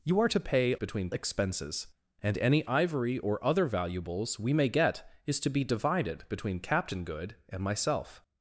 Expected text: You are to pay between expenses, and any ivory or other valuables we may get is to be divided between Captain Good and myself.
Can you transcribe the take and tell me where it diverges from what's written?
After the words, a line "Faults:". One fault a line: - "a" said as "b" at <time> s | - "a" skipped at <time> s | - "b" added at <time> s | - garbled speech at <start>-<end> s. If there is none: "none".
You are to pay between expenses, and any ivory or other valuables we may get is to be divided between Captain Good and myself.
Faults:
none